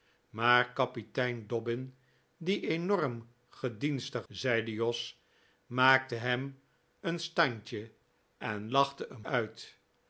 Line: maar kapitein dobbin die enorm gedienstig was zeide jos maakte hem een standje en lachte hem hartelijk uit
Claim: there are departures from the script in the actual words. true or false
true